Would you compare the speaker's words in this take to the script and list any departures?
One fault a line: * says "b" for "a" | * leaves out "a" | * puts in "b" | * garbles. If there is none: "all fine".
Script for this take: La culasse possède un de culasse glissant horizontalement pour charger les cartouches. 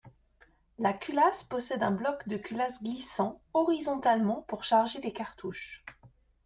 * puts in "bloc"